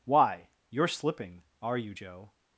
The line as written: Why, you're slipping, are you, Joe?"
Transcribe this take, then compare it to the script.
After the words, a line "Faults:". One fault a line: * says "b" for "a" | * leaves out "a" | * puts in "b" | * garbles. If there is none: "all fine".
Why, you're slipping, are you, Joe?"
Faults:
all fine